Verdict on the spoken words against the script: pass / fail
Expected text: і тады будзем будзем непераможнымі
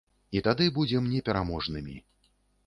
fail